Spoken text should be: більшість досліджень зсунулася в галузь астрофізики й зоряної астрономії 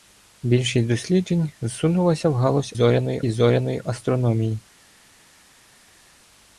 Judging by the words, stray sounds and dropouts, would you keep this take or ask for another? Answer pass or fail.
fail